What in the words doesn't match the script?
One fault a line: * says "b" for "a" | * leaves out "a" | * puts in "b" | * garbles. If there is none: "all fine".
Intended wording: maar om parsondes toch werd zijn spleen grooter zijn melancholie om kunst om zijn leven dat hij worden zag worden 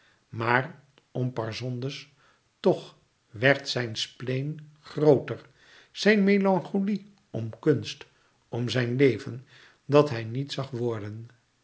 * says "niet" for "worden"